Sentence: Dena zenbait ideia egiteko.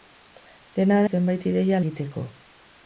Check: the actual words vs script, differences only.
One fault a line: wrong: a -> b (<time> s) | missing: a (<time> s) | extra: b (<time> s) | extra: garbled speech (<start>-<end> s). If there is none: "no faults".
no faults